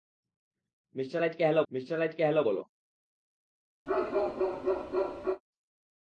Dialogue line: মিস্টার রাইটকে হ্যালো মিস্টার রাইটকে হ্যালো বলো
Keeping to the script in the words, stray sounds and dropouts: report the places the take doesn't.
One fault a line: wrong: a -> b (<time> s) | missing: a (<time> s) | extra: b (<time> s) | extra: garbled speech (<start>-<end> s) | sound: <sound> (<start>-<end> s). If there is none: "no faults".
sound: bark (3.9-5.4 s)